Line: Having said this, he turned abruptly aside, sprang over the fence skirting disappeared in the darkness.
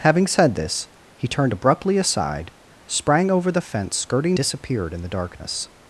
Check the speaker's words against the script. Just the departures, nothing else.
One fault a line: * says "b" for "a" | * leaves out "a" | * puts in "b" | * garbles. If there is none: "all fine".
all fine